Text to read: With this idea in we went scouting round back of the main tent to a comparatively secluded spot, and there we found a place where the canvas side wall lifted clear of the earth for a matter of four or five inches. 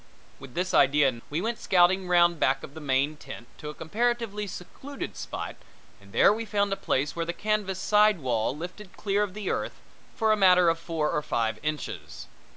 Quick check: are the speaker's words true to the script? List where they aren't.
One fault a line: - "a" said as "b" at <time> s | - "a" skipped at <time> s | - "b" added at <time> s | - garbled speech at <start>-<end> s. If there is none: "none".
none